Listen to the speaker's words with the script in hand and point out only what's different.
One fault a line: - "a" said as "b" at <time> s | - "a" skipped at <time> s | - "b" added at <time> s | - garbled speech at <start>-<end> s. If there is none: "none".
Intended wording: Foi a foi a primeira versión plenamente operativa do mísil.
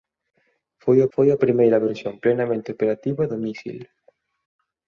none